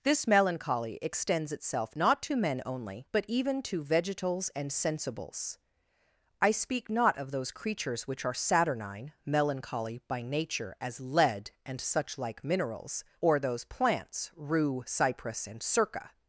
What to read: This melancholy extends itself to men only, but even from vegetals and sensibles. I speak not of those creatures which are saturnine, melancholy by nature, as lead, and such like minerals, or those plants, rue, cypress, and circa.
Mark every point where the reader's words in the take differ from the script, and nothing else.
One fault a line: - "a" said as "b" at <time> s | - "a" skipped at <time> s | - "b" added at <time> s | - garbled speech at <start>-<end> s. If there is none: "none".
- "not" added at 1.9 s
- "from" said as "to" at 3.6 s